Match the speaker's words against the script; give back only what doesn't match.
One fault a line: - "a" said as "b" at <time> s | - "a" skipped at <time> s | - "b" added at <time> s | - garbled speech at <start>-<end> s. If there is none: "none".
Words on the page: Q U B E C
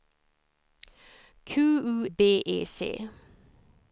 none